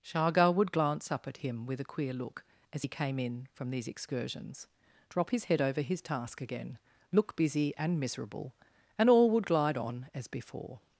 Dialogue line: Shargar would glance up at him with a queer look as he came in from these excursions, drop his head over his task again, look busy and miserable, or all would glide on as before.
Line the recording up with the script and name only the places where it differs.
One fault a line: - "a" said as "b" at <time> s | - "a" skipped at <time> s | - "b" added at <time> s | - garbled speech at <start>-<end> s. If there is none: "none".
- "or" said as "and" at 9.0 s